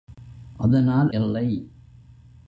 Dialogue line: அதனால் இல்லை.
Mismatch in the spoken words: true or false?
false